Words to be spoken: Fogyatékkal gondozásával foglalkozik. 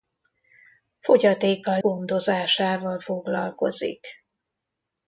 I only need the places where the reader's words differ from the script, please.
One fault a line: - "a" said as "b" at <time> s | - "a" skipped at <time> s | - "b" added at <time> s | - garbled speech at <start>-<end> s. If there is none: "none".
none